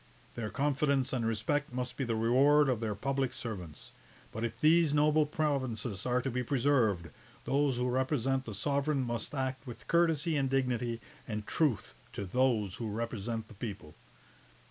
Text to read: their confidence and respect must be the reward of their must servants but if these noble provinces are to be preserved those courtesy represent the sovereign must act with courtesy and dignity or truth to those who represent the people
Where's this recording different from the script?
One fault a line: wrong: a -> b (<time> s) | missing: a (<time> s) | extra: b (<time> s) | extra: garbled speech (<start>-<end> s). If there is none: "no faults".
wrong: must -> public (3.0 s)
wrong: courtesy -> who (7.8 s)
wrong: or -> and (11.3 s)